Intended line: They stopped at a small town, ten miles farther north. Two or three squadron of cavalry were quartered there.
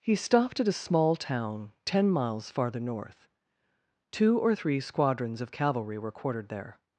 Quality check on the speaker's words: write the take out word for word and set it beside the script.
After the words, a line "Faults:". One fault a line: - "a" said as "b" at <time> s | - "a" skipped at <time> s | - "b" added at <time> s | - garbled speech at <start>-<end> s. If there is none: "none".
He stopped at a small town, ten miles farther north. Two or three squadrons of cavalry were quartered there.
Faults:
- "They" said as "He" at 0.0 s
- "squadron" said as "squadrons" at 4.8 s